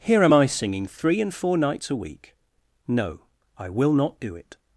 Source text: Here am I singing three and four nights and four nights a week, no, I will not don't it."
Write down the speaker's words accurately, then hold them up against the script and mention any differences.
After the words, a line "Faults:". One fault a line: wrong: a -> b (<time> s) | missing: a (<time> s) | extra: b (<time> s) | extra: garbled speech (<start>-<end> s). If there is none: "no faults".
Here am I singing three and four nights a week, no, I will not do it."
Faults:
missing: and four nights (1.9 s)
wrong: don't -> do (4.2 s)